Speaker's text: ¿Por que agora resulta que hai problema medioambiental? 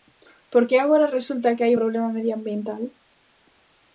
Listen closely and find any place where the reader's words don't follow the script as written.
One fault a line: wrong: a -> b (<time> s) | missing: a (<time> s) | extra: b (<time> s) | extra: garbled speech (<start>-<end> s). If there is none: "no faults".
no faults